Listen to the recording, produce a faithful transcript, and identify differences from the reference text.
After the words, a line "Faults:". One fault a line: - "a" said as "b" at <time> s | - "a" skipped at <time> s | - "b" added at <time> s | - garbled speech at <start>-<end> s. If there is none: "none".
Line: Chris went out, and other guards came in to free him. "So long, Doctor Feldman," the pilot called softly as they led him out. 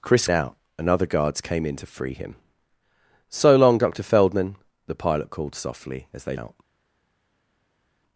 Chris out, and other guards came in to free him. "So long, Doctor Feldman," the pilot called softly as they out.
Faults:
- "went" skipped at 0.3 s
- "led him" skipped at 6.4 s